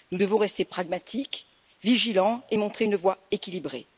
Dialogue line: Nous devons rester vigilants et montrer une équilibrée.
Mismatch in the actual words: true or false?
true